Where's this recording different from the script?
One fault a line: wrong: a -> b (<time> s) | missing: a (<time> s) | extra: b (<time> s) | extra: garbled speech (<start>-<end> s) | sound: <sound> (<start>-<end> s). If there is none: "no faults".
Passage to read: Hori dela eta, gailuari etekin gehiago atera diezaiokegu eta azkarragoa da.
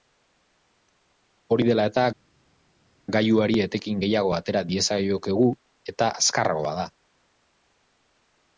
no faults